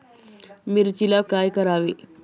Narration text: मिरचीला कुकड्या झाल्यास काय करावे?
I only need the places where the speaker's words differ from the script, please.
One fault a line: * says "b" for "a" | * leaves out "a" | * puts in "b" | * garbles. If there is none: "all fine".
* leaves out "कुकड्या झाल्यास"